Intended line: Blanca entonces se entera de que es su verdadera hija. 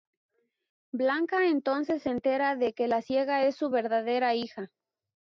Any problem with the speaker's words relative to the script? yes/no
yes